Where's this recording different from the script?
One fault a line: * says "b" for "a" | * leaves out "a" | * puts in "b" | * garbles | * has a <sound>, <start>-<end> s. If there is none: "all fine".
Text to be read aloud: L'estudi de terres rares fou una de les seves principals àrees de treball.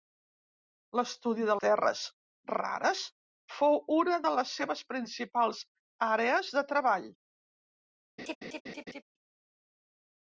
* has a laugh, 8.2-9.0 s